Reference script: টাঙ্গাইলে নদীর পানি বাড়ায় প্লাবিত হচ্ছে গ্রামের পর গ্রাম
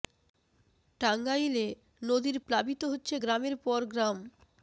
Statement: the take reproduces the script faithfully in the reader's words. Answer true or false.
false